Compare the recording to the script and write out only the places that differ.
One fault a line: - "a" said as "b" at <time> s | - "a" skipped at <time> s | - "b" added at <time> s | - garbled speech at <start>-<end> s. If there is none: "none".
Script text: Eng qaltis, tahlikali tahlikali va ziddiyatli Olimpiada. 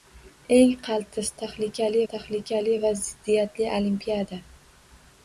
none